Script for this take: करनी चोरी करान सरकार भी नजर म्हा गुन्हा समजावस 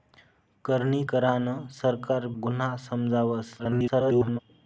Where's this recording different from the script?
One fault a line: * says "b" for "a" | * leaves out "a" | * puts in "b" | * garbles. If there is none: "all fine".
* leaves out "चोरी"
* leaves out "भी नजर म्हा"
* garbles